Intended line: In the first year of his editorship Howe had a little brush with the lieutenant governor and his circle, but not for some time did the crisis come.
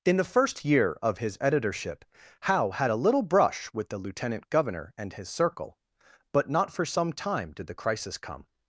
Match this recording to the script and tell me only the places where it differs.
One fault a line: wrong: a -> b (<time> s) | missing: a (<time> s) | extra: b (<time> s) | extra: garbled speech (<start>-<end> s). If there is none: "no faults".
no faults